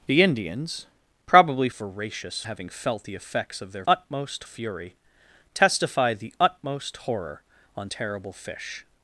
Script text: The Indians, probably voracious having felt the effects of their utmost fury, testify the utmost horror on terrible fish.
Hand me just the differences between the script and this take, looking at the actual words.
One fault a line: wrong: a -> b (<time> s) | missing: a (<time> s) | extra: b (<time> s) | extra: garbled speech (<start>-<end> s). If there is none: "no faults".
no faults